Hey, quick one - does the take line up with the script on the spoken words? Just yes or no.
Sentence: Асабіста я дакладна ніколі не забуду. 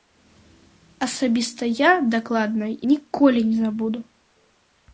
yes